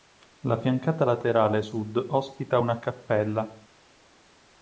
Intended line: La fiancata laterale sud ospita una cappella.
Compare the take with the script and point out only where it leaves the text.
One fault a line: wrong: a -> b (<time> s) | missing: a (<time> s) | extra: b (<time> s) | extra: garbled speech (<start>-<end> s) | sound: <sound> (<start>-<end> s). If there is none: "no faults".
no faults